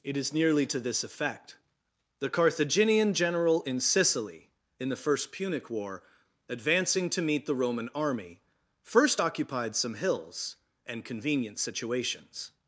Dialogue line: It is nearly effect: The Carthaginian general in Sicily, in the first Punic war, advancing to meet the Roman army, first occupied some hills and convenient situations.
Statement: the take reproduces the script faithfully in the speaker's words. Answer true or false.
false